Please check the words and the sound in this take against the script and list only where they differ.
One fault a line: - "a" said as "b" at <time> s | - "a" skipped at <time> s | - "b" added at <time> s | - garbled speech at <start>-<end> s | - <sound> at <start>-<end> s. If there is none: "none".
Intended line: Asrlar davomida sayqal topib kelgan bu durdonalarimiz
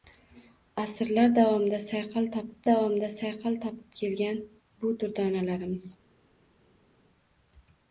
- "davomida sayqal topib" added at 2.7 s